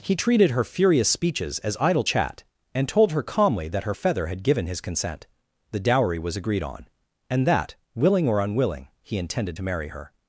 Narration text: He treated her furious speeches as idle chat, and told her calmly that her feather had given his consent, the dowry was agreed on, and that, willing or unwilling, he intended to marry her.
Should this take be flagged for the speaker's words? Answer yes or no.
no